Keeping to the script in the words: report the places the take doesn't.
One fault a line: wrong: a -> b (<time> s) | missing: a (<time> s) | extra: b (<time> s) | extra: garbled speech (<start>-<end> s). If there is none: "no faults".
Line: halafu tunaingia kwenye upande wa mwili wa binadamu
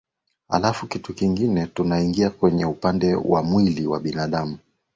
extra: kitu kingine (0.9 s)